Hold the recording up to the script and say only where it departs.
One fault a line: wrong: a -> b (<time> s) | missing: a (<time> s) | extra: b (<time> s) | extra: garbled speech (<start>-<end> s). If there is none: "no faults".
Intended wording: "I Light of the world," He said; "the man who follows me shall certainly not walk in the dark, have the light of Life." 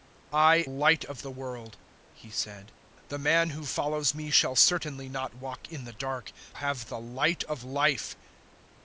no faults